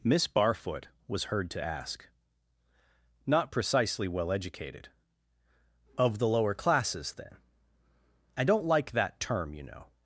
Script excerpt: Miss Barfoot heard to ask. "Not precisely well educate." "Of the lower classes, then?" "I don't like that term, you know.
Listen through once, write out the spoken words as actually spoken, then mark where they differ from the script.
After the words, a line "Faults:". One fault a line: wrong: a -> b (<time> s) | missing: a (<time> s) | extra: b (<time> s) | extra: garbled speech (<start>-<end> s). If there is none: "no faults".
Miss Barfoot was heard to ask. "Not precisely well educated." "Of the lower classes, then?" "I don't like that term, you know.
Faults:
extra: was (1.1 s)
wrong: educate -> educated (4.3 s)